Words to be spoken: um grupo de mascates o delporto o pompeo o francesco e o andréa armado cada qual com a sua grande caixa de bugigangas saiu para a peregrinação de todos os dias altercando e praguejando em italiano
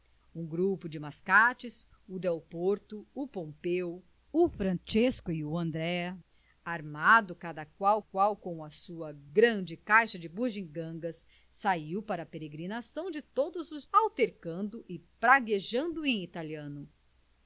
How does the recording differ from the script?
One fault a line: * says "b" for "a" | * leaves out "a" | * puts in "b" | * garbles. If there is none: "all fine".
* puts in "qual"
* leaves out "dias"